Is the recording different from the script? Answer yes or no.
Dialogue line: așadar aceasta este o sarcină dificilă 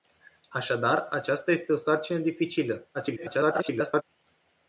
yes